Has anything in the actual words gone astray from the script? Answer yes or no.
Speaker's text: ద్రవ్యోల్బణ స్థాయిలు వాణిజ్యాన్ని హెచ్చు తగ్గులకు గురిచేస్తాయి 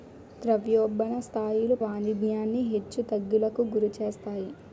no